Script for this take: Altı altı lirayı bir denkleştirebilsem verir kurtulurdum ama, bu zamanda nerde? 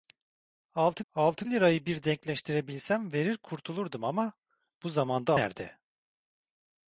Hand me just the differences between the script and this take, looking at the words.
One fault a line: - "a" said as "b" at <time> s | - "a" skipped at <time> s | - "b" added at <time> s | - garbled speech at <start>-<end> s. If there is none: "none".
none